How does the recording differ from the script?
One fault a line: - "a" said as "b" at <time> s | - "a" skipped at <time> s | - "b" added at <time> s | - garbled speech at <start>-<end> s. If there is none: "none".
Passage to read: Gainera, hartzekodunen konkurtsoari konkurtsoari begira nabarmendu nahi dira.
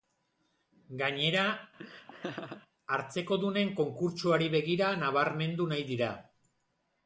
- "konkurtsoari" skipped at 4.5 s